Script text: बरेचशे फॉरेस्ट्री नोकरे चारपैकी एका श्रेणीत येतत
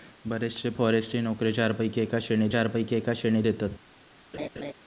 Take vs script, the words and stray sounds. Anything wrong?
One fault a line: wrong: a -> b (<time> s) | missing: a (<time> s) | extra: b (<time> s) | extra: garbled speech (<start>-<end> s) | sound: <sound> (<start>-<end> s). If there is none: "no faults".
extra: चारपैकी एका श्रेणीत (2.5 s)
sound: laugh (4.3-4.7 s)